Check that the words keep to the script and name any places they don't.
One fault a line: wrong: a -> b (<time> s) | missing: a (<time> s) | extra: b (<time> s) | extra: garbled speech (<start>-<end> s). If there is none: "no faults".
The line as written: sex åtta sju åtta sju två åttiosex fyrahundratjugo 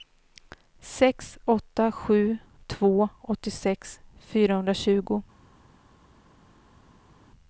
missing: åtta sju (2.4 s)